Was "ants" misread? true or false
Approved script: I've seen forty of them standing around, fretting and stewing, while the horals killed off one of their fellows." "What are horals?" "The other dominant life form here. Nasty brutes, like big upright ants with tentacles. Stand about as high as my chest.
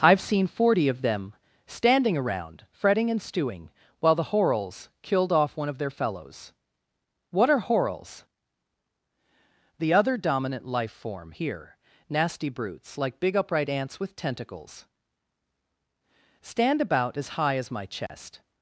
false